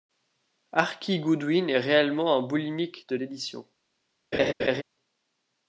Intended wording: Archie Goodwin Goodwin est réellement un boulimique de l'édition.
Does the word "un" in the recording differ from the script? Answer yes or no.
no